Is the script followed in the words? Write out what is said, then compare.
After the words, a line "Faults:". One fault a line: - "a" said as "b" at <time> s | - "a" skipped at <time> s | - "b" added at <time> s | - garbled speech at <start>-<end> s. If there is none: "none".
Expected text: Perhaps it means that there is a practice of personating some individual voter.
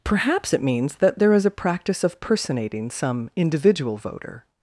Perhaps it means that there is a practice of personating some individual voter.
Faults:
none